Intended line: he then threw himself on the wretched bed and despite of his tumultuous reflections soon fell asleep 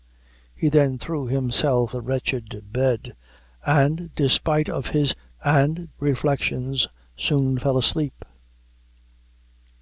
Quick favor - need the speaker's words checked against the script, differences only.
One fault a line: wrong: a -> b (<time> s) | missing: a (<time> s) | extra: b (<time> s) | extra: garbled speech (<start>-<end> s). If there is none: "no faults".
missing: on (1.9 s)
wrong: tumultuous -> and (5.4 s)